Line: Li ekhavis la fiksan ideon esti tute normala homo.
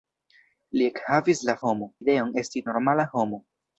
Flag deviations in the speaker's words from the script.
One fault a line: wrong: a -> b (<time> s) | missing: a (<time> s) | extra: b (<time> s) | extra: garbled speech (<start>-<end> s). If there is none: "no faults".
wrong: fiksan -> homo (1.7 s)
missing: tute (2.7 s)